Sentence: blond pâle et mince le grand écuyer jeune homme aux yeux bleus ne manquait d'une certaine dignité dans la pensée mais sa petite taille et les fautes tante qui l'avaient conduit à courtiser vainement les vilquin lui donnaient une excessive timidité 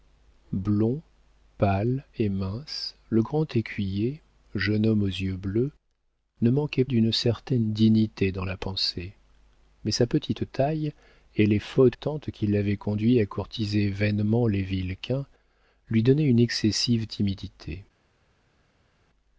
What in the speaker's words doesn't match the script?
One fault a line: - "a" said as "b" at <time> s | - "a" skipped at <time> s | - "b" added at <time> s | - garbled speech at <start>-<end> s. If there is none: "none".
none